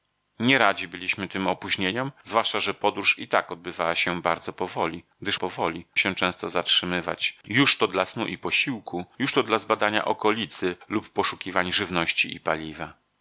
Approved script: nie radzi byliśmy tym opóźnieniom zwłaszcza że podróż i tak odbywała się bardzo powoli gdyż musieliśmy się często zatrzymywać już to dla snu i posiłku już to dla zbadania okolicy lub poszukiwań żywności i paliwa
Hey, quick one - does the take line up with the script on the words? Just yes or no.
no